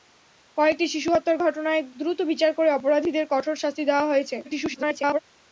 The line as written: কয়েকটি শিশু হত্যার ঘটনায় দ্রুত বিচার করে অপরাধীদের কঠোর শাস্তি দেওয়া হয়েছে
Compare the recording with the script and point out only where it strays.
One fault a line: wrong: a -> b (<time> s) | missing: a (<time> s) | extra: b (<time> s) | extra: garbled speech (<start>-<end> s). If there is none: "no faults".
extra: garbled speech (4.4-5.2 s)